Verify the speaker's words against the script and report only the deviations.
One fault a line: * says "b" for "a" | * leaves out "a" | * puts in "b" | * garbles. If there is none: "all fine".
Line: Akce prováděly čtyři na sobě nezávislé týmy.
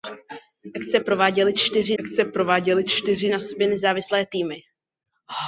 * puts in "akce prováděly čtyři"